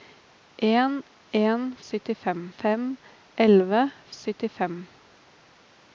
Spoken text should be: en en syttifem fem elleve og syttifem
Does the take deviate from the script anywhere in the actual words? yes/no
no